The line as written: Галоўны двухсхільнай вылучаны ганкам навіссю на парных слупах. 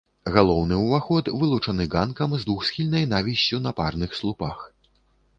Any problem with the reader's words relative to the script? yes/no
yes